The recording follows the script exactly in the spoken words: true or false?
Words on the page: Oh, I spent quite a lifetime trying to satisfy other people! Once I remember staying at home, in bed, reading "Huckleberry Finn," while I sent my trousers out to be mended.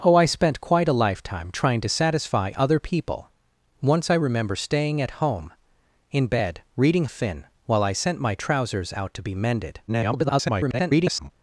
false